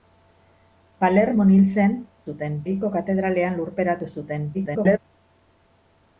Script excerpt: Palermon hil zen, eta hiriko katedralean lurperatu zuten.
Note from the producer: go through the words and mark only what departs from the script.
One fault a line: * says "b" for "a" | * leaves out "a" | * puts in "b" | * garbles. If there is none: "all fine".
* says "zuten" for "eta"
* garbles